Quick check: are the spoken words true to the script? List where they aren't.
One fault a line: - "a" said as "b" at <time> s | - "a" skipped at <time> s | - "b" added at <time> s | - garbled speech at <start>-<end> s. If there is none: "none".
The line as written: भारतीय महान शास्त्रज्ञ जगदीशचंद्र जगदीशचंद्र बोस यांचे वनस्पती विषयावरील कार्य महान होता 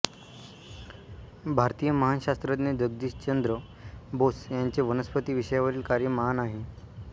- "जगदीशचंद्र" skipped at 3.6 s
- "होता" said as "आहे" at 6.4 s